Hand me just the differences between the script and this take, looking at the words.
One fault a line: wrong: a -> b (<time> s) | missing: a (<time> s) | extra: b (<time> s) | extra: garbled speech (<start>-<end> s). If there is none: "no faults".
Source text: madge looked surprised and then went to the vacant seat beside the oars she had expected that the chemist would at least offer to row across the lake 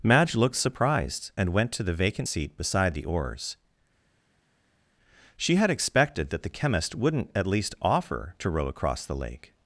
missing: then (1.5 s)
wrong: would -> wouldn't (6.9 s)